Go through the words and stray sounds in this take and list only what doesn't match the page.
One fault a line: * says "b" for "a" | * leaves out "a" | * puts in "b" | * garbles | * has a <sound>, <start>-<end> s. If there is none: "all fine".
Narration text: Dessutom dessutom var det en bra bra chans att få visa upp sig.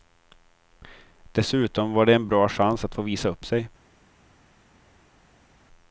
* leaves out "dessutom"
* leaves out "bra"